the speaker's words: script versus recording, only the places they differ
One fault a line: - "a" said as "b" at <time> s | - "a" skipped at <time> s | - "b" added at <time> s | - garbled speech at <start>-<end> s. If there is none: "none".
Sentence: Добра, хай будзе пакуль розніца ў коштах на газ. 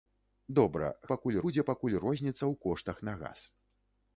- "хай" said as "пакуль" at 1.1 s